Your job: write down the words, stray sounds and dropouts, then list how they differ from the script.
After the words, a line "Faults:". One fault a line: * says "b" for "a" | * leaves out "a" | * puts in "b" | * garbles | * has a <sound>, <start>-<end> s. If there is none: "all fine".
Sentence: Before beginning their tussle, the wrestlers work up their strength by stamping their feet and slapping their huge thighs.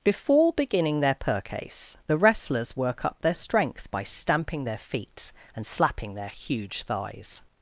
Before beginning their percase, the wrestlers work up their strength by stamping their feet and slapping their huge thighs.
Faults:
* says "percase" for "tussle"